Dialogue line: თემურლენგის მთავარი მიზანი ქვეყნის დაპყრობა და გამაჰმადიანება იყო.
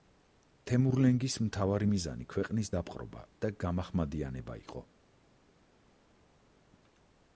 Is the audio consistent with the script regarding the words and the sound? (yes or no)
yes